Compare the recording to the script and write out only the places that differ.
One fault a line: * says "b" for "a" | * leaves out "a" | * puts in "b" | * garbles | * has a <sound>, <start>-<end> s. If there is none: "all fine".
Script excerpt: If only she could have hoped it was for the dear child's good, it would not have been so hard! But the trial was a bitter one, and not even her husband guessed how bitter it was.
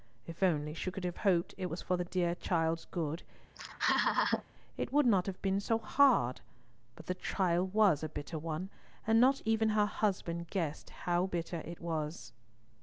* has a laugh, 3.5-4.4 s